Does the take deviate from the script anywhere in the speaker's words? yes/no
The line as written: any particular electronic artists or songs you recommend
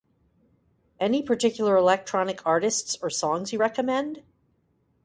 no